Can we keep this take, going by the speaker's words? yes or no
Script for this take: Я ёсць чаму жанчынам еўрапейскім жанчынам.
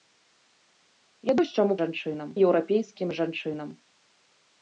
yes